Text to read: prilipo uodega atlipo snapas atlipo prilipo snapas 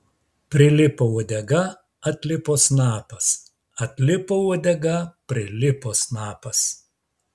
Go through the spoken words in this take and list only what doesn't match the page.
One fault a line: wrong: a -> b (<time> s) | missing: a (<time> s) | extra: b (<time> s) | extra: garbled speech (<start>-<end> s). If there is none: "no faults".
extra: uodega (4.5 s)